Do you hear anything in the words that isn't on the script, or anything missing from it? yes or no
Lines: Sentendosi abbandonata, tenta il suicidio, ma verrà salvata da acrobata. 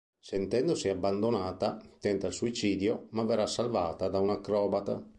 yes